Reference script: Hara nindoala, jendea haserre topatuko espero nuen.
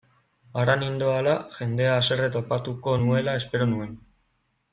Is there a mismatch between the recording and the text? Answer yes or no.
yes